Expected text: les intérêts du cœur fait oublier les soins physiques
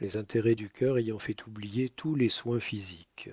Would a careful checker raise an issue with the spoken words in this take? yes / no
yes